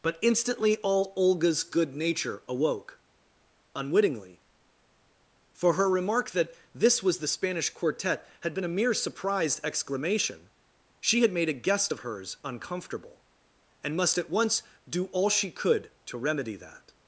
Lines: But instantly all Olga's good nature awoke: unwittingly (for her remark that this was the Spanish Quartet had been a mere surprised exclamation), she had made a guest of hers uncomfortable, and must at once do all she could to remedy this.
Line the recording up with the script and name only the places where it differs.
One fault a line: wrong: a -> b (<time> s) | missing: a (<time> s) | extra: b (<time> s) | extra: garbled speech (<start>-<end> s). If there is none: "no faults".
wrong: this -> that (16.5 s)